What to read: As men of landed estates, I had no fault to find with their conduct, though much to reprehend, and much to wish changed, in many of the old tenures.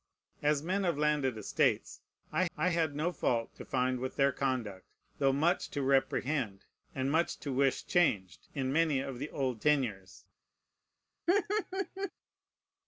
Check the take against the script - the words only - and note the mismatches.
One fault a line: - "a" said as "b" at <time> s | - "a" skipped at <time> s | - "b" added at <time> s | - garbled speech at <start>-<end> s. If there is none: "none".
- "I" added at 2.6 s